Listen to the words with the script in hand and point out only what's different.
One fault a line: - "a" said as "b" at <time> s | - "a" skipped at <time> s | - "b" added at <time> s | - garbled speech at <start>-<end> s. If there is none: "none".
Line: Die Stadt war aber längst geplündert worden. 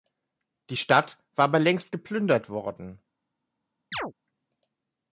none